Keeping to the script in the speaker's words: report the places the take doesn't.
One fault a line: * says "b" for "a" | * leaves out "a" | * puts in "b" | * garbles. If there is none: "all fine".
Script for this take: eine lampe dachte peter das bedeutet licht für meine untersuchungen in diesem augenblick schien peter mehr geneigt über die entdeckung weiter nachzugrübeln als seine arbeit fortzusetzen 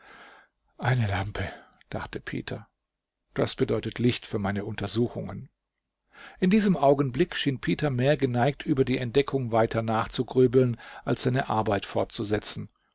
all fine